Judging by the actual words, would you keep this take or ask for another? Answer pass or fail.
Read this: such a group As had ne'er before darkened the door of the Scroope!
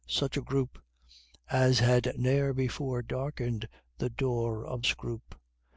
fail